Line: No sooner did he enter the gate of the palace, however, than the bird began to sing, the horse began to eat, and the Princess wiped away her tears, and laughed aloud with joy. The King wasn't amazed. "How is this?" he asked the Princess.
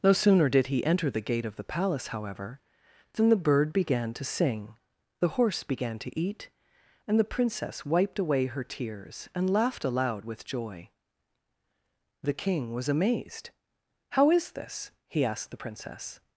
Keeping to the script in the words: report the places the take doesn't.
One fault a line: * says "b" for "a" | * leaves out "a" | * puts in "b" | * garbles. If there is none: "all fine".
* says "was" for "wasn't"